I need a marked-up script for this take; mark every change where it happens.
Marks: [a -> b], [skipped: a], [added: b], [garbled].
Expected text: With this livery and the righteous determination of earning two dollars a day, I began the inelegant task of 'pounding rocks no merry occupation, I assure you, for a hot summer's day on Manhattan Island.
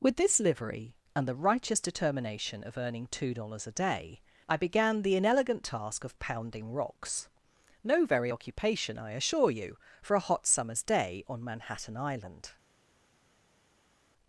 With this livery and the righteous determination of earning two dollars a day, I began the inelegant task of 'pounding rocks no [merry -> very] occupation, I assure you, for a hot summer's day on Manhattan Island.